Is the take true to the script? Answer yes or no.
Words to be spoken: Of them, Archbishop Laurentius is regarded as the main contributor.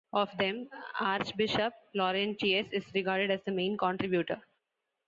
yes